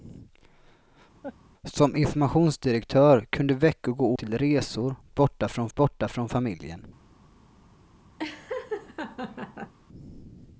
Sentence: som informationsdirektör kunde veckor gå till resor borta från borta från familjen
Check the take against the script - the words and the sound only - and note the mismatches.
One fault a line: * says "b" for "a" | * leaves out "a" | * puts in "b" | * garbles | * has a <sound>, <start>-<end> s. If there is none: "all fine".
* has a laugh, 1.2-1.4 s
* has a laugh, 8.2-9.7 s